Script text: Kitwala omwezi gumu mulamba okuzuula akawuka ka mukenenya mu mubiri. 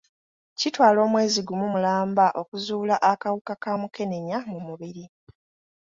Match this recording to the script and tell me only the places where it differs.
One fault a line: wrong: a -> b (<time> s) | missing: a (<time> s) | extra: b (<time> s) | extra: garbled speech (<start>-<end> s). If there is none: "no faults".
no faults